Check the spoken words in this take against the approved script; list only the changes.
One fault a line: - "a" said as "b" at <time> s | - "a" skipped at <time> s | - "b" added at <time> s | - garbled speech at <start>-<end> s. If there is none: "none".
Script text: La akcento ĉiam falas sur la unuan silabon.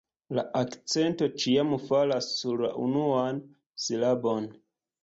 none